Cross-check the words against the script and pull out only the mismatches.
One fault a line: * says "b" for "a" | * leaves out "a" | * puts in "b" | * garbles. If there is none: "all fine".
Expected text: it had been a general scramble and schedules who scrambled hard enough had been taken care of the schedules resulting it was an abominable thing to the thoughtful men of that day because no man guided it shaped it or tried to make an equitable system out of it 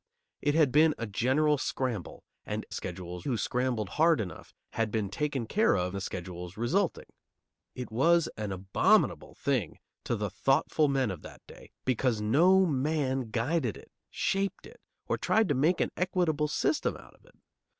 all fine